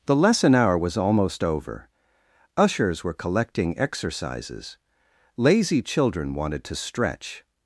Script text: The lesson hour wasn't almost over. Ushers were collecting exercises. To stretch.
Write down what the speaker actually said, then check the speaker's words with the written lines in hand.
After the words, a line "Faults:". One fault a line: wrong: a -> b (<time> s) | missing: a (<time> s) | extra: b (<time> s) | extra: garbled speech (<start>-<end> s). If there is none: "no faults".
The lesson hour was almost over. Ushers were collecting exercises. Lazy children wanted to stretch.
Faults:
wrong: wasn't -> was (0.8 s)
extra: Lazy children wanted (5.4 s)